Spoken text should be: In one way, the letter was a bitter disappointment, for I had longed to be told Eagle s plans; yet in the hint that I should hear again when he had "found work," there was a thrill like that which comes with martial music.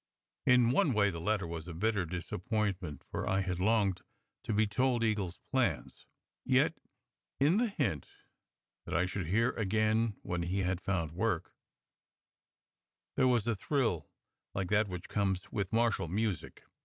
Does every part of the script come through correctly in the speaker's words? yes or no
yes